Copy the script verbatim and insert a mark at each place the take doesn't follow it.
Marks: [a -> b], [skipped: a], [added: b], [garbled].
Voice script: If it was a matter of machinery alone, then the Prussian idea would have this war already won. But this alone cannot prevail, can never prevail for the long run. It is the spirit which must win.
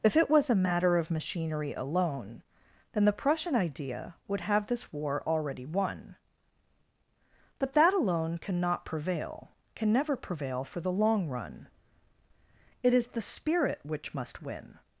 If it was a matter of machinery alone, then the Prussian idea would have this war already won. But [this -> that] alone cannot prevail, can never prevail for the long run. It is the spirit which must win.